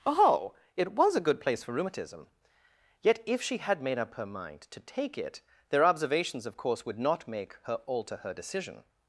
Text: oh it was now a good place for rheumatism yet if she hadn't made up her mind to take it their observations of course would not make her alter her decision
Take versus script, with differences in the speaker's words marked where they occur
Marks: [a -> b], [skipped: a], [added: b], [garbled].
oh it was [skipped: now] a good place for rheumatism yet if she [hadn't -> had] made up her mind to take it their observations of course would not make her alter her decision